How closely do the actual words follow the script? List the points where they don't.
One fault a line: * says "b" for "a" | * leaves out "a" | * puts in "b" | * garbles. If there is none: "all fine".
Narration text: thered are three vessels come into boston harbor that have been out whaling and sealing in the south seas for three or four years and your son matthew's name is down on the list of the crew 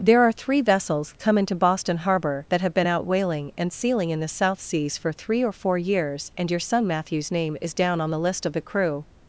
* says "there" for "thered"